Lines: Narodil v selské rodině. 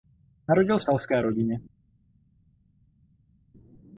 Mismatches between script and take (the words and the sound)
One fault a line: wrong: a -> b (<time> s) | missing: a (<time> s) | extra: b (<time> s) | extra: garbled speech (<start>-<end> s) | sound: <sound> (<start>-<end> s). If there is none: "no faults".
no faults